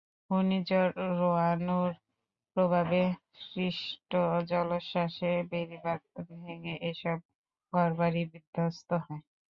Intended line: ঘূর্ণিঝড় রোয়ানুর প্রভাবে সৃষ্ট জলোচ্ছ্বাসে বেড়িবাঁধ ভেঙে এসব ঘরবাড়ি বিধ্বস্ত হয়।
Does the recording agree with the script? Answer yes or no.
yes